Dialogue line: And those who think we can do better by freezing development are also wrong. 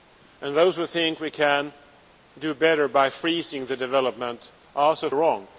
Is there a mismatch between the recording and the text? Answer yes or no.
no